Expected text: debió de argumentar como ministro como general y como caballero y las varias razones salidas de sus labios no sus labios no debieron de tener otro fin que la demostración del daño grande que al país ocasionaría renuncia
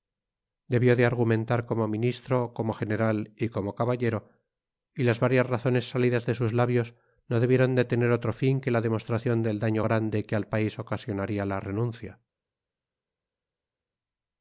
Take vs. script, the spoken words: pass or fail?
fail